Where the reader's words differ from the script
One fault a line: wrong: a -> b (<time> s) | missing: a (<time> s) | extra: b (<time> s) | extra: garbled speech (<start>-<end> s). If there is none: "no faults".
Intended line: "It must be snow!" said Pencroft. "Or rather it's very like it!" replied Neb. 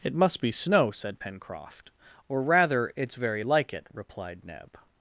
no faults